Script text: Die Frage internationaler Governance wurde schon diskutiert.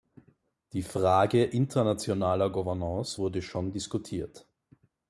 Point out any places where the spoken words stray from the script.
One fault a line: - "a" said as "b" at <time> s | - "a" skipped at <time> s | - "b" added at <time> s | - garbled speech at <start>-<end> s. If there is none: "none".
none